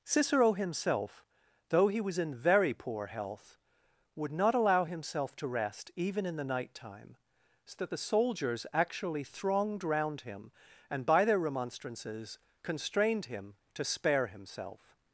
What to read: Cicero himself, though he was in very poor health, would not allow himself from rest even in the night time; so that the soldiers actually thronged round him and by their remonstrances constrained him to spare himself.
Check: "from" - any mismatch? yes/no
yes